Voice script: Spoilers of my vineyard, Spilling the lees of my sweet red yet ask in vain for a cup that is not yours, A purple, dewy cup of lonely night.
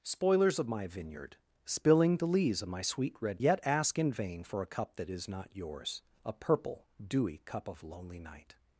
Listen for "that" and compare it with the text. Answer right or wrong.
right